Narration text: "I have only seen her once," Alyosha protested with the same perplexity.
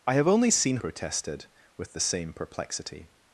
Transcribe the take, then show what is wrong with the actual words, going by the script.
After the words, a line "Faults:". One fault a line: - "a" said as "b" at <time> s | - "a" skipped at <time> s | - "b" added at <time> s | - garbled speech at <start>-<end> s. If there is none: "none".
"I have only seen protested with the same perplexity.
Faults:
- "her once Alyosha" skipped at 0.8 s